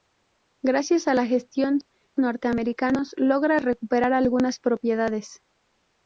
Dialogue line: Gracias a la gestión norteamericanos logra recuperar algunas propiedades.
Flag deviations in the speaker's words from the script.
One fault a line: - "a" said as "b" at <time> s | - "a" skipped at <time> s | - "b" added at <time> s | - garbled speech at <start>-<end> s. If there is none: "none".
none